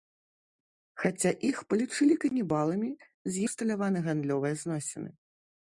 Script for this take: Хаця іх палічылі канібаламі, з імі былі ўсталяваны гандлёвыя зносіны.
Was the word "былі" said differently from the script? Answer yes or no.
yes